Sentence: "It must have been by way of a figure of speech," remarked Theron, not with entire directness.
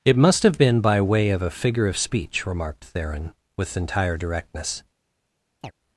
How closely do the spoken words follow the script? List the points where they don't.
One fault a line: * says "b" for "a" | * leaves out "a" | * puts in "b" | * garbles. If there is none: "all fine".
* leaves out "not"